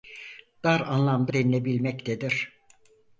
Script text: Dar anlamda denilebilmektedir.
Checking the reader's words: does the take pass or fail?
pass